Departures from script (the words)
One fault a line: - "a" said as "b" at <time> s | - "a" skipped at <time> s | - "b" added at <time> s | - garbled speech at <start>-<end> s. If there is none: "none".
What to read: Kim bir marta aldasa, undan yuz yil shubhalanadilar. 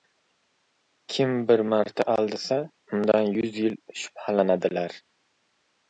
none